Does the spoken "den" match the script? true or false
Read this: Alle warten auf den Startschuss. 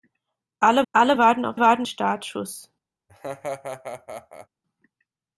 false